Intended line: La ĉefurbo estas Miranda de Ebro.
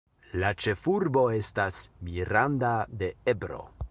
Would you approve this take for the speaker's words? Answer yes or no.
yes